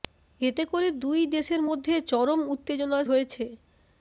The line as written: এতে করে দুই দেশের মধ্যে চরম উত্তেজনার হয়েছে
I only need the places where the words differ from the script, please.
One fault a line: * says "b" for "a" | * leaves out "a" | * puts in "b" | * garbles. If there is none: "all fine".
all fine